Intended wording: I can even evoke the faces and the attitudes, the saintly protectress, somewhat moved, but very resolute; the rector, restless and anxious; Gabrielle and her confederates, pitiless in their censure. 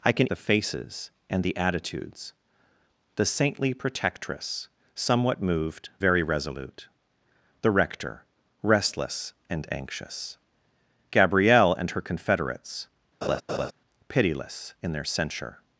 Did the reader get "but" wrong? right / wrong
wrong